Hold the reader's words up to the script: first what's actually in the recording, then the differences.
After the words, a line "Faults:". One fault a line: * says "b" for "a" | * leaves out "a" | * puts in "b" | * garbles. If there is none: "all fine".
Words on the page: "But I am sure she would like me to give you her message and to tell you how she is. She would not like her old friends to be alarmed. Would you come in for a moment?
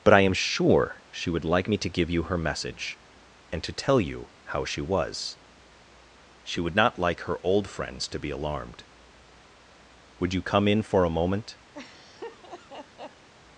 "But I am sure she would like me to give you her message and to tell you how she was. She would not like her old friends to be alarmed. Would you come in for a moment?
Faults:
* says "was" for "is"